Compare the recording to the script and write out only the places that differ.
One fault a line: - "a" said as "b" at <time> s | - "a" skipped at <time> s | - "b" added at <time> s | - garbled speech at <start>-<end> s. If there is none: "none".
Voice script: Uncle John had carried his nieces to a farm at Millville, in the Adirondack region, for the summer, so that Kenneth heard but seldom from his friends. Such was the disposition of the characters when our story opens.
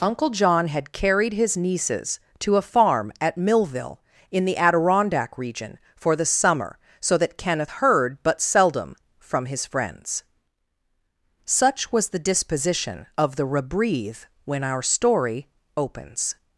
- "characters" said as "rebreathe" at 13.5 s